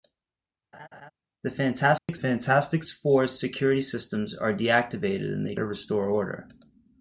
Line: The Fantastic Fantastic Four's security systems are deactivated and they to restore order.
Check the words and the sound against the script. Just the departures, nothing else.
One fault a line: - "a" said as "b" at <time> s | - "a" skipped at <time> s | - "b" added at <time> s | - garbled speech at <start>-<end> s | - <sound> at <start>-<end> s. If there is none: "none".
- laugh at 0.7-1.1 s
- dropout at 2.0-2.1 s